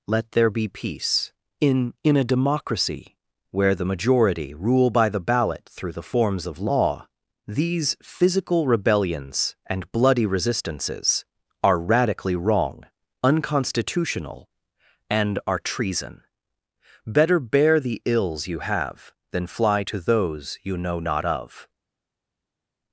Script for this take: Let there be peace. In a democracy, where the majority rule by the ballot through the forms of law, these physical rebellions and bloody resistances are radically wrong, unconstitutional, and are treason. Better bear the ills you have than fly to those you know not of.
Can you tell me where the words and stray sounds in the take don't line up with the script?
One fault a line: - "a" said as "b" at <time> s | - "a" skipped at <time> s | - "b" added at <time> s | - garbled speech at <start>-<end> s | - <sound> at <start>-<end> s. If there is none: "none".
- "In" added at 2.0 s